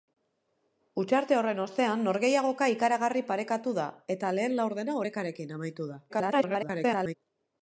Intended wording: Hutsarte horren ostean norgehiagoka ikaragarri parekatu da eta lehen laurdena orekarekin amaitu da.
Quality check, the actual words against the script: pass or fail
fail